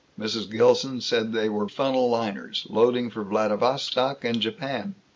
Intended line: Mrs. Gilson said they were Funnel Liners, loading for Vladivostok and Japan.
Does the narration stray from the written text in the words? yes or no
no